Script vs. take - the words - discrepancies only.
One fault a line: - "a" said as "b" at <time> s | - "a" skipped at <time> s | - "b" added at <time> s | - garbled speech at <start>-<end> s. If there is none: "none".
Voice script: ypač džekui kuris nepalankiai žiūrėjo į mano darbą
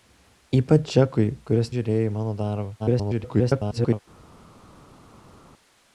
- "nepalankiai" skipped at 1.7 s
- garbled speech at 2.8-4.0 s